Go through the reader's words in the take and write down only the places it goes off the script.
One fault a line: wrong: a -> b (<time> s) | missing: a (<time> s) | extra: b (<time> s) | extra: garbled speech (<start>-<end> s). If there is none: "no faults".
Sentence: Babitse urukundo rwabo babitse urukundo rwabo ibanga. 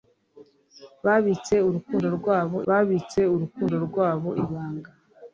no faults